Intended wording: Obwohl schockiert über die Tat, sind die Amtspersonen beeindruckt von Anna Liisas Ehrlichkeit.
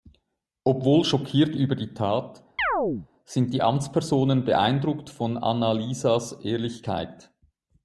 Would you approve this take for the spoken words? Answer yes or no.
yes